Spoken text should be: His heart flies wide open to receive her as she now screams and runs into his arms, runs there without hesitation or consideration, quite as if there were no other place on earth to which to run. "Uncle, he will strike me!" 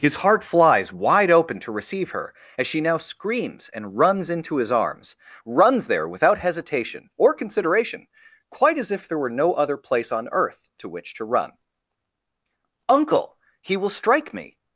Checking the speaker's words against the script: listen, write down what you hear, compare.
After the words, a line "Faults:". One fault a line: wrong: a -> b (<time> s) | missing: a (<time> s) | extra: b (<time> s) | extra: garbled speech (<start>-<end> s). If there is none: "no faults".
His heart flies wide open to receive her as she now screams and runs into his arms, runs there without hesitation or consideration, quite as if there were no other place on earth to which to run. "Uncle, he will strike me!"
Faults:
no faults